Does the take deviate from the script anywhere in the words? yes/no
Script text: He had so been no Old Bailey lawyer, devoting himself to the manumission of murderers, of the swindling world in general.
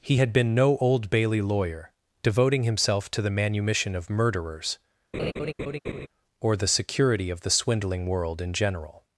yes